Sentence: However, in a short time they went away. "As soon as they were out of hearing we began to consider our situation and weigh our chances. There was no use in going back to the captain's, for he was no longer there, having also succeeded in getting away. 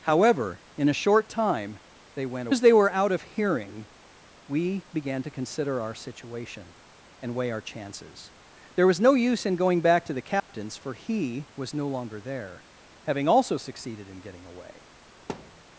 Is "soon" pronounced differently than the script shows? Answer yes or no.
yes